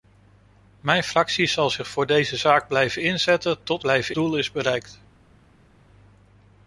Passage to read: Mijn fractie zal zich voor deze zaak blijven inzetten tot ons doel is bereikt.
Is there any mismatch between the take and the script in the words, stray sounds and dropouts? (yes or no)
yes